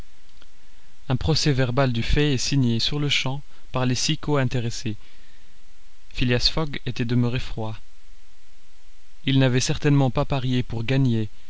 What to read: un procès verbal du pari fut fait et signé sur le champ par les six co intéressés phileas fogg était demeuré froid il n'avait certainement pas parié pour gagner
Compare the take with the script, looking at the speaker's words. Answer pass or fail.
fail